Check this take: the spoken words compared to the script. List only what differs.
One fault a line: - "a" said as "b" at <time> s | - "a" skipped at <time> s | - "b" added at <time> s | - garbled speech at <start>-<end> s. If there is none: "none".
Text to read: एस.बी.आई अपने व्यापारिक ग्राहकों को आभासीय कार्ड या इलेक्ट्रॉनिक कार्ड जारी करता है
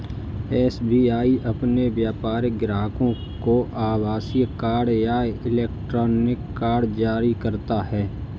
none